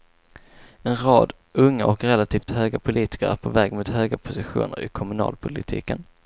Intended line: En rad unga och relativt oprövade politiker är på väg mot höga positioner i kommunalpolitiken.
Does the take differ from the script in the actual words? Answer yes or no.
yes